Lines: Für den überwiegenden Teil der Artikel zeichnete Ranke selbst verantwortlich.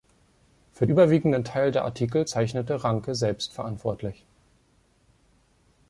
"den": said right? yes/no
no